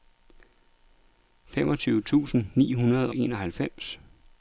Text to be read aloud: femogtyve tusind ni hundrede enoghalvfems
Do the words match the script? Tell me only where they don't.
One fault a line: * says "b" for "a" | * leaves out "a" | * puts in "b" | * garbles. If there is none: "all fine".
all fine